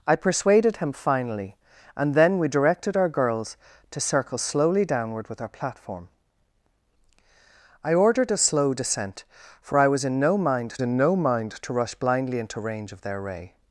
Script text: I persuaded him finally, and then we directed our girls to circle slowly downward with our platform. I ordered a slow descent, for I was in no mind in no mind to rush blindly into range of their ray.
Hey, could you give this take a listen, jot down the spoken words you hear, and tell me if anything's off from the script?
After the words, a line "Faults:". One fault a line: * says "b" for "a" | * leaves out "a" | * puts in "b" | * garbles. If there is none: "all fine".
I persuaded him finally, and then we directed our girls to circle slowly downward with our platform. I ordered a slow descent, for I was in no mind in no mind to rush blindly into range of their ray.
Faults:
all fine